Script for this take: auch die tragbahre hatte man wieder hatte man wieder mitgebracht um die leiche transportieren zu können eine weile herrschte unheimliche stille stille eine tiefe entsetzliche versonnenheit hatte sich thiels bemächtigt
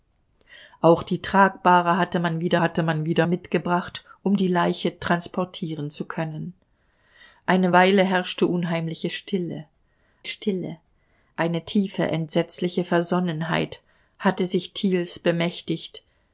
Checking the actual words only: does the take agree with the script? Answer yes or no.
yes